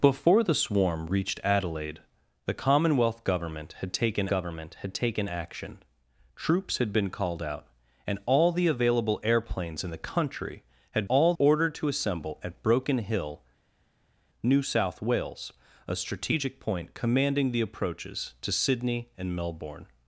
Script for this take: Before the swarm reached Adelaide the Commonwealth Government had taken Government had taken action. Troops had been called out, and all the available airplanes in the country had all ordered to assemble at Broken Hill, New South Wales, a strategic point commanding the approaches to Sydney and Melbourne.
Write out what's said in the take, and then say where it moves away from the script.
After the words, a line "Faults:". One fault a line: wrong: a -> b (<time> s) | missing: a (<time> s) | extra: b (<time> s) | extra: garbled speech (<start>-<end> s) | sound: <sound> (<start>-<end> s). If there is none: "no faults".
Before the swarm reached Adelaide the Commonwealth Government had taken Government had taken action. Troops had been called out, and all the available airplanes in the country had all ordered to assemble at Broken Hill, New South Wales, a strategic point commanding the approaches to Sydney and Melbourne.
Faults:
no faults